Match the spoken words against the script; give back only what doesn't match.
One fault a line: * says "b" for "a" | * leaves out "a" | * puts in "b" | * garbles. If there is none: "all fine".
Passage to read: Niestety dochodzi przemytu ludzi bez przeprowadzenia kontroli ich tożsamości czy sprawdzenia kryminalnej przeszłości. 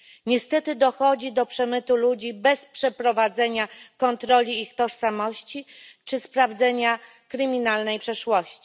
* puts in "do"